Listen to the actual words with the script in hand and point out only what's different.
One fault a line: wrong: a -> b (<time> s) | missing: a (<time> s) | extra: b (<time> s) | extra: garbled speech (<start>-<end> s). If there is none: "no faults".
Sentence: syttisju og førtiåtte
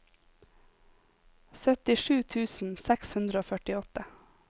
extra: tusen seks hundre (2.4 s)